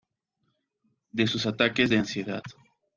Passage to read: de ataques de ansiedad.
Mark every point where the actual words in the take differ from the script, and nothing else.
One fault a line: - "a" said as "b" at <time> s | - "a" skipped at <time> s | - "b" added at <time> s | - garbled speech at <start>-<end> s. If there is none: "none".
- "sus" added at 1.3 s